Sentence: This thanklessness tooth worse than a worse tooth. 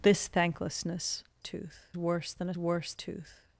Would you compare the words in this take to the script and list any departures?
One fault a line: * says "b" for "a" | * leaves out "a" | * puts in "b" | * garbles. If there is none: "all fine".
all fine